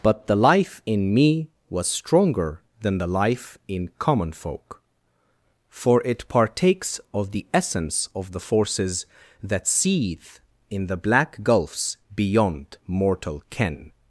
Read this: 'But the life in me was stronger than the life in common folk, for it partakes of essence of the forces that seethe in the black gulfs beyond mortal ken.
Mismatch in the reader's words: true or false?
true